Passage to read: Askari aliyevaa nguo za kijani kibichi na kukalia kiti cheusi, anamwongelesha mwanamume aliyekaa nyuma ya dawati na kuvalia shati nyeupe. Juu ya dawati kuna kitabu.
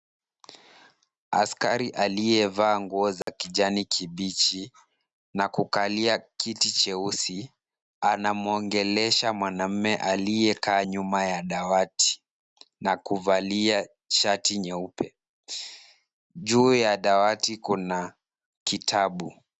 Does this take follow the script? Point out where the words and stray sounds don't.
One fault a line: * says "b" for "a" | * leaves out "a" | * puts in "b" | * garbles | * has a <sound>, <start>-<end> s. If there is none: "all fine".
* has a dropout, 3.2-3.3 s